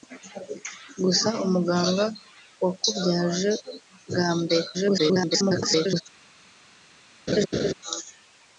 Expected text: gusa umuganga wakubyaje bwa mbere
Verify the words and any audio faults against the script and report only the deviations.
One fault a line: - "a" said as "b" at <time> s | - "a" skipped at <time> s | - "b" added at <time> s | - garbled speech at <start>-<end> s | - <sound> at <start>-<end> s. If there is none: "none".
- garbled speech at 4.7-6.0 s
- laugh at 7.3-7.7 s